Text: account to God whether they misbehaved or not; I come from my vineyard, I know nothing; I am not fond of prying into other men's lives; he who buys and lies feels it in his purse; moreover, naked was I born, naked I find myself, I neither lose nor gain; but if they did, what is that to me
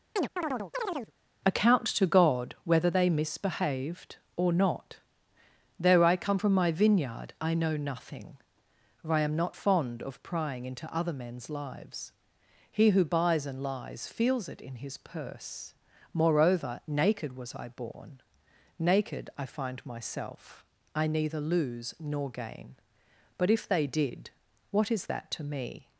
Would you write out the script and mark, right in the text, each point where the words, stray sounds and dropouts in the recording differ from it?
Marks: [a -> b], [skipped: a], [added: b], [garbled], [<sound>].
[chirp] account to God whether they misbehaved or not; [added: though] I come from my vineyard, I know nothing; [added: for] I am not fond of prying into other men's lives; he who buys and lies feels it in his purse; moreover, naked was I born, naked I find myself, I neither lose nor gain; but if they did, what is that to me